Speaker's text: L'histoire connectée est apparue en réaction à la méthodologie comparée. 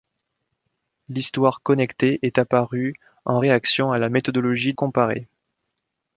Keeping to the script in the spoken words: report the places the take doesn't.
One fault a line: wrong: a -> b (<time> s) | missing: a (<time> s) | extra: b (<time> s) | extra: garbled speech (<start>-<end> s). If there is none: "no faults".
no faults